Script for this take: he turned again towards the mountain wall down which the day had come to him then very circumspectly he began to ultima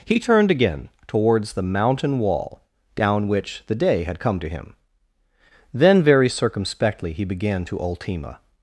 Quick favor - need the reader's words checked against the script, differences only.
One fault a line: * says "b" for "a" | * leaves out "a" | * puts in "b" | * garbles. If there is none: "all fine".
all fine